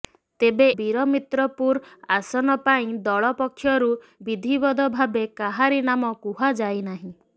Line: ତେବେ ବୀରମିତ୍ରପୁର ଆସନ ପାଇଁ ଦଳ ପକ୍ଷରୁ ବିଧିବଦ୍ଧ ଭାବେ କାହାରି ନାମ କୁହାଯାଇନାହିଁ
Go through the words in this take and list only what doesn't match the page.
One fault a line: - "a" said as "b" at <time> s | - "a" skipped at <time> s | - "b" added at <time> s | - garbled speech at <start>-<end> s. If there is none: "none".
none